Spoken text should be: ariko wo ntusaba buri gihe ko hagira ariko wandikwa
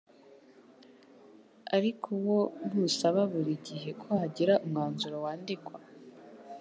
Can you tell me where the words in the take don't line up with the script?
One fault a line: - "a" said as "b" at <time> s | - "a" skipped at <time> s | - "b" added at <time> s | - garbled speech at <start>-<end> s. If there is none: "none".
- "ariko" said as "umwanzuro" at 4.6 s